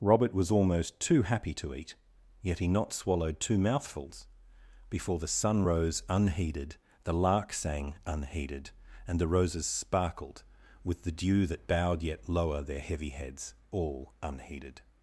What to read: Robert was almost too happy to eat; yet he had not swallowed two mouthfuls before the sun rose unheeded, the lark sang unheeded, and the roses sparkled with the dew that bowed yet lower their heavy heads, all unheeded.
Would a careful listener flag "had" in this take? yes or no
yes